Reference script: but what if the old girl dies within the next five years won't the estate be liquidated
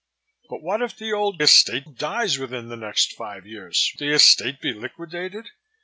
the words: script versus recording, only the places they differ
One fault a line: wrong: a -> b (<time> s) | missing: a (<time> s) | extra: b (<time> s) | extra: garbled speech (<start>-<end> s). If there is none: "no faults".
wrong: girl -> estate (1.4 s)
missing: won't (3.9 s)